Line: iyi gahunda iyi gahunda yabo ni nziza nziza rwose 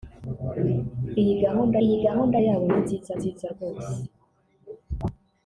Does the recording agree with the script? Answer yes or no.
yes